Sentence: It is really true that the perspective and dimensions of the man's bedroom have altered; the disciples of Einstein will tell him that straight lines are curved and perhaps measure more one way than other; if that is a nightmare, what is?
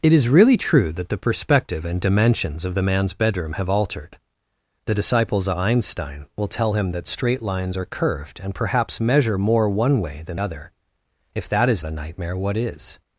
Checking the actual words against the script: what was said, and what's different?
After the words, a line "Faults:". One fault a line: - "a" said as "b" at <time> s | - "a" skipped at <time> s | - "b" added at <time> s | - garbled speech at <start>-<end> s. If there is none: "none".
It is really true that the perspective and dimensions of the man's bedroom have altered; the disciples of Einstein will tell him that straight lines are curved and perhaps measure more one way than other; if that is a nightmare, what is?
Faults:
none